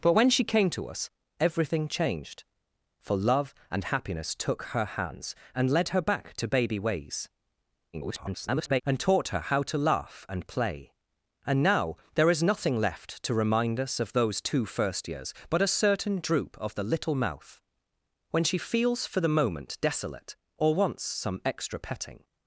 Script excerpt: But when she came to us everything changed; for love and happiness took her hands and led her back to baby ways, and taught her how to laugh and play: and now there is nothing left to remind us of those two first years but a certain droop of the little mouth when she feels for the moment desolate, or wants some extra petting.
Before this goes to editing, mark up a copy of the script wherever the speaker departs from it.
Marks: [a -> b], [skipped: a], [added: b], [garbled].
But when she came to us everything changed; for love and happiness took her hands and led her back to baby ways, [garbled] and taught her how to laugh and play: and now there is nothing left to remind us of those two first years but a certain droop of the little mouth when she feels for the moment desolate, or wants some extra petting.